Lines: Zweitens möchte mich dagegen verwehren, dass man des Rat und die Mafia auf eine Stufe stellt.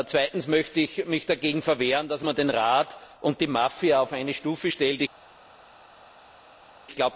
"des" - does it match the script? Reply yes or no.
no